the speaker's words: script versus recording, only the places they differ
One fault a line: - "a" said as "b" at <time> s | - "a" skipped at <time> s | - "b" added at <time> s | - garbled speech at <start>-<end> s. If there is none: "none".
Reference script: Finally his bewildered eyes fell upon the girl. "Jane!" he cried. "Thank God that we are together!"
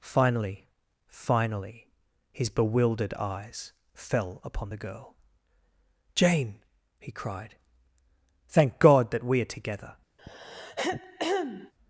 - "finally" added at 1.1 s